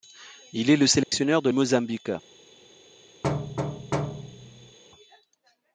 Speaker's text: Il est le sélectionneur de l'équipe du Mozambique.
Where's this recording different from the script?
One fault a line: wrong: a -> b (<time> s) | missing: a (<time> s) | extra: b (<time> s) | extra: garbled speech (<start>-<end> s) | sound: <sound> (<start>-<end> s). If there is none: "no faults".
sound: dropout (1.0-1.1 s)
missing: l'équipe du (1.5 s)
sound: thud (3.2-4.8 s)